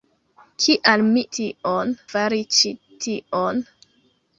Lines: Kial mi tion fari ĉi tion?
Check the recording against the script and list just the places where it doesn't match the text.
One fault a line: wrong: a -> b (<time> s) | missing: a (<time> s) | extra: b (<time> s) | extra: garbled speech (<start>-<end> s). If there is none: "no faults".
no faults